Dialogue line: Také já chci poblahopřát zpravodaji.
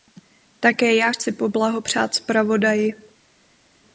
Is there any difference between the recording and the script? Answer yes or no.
no